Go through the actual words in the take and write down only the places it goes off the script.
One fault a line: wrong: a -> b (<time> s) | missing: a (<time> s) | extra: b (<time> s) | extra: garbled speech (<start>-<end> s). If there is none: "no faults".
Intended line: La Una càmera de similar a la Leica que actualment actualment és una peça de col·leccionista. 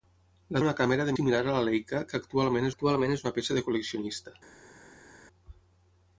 no faults